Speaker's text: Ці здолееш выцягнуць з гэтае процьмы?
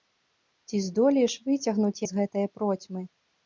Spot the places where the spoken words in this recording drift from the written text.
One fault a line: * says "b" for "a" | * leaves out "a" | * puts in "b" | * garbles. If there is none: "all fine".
all fine